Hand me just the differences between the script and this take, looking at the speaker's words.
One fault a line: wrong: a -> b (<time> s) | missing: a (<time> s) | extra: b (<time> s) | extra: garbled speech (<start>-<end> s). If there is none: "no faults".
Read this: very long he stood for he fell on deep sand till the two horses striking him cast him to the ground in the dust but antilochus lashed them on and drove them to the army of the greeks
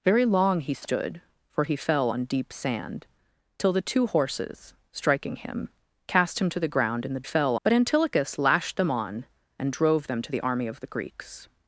wrong: dust -> fell (7.2 s)